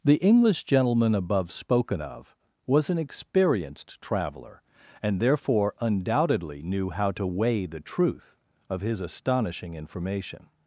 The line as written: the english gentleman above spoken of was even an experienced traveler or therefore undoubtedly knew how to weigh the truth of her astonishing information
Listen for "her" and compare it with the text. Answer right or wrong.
wrong